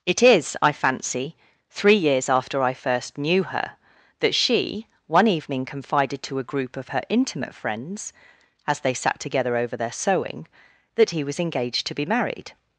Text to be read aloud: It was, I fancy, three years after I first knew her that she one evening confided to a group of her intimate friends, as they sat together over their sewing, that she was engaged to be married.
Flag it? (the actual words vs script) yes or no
yes